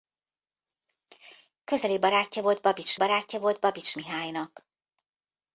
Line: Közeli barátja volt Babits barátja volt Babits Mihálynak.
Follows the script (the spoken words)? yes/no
yes